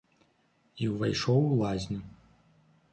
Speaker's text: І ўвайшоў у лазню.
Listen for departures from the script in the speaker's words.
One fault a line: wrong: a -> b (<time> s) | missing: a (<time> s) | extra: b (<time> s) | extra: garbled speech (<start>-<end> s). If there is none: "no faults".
no faults